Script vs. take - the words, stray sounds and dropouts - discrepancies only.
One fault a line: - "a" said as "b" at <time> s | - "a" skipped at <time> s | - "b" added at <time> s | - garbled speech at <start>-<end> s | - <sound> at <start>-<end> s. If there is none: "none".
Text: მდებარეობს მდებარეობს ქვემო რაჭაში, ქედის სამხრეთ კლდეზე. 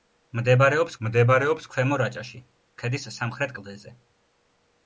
none